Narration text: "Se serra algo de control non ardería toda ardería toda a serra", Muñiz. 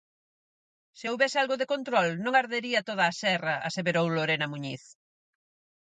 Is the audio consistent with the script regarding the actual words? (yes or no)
no